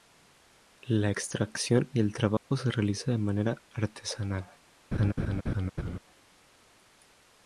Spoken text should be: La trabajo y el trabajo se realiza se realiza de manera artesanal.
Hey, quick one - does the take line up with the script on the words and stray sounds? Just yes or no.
no